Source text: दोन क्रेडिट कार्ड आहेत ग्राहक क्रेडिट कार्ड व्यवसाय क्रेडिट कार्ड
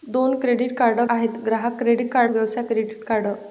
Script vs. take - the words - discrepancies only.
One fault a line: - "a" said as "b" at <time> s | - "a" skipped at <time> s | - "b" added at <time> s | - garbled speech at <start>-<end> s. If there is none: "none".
none